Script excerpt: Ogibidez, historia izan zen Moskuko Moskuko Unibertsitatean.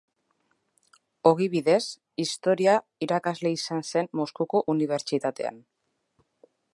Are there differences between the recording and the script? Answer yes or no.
yes